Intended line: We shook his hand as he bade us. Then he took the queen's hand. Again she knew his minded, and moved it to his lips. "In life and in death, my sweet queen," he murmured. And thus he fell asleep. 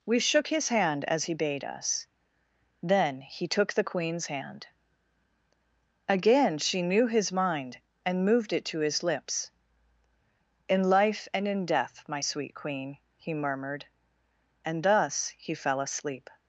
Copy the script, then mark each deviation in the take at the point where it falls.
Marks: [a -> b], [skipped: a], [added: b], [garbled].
We shook his hand as he bade us. Then he took the queen's hand. Again she knew his [minded, -> mind] and moved it to his lips. "In life and in death, my sweet queen," he murmured. And thus he fell asleep.